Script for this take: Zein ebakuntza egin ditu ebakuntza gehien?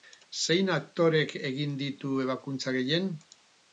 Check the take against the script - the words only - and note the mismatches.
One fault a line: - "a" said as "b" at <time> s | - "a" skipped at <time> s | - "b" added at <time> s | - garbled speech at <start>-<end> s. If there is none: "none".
- "ebakuntza" said as "aktorek" at 0.8 s